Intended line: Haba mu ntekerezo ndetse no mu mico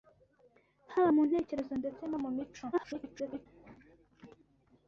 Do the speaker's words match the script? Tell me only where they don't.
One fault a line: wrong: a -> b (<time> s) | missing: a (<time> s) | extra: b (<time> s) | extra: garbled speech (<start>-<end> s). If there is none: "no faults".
extra: garbled speech (2.7-3.5 s)